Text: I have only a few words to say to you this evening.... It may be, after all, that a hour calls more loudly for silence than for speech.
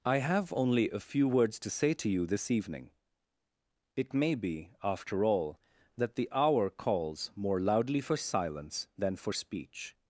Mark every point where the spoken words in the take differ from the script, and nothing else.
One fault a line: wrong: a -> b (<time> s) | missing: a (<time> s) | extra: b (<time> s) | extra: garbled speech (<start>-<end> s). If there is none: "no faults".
wrong: a -> the (6.1 s)